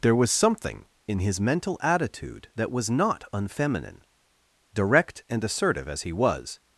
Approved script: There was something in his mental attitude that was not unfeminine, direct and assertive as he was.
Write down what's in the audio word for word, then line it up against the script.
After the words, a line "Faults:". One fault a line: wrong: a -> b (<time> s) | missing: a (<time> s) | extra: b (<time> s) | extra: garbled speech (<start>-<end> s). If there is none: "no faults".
There was something in his mental attitude that was not unfeminine, direct and assertive as he was.
Faults:
no faults